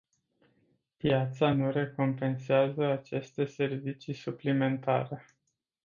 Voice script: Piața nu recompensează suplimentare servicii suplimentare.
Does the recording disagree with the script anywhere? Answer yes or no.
yes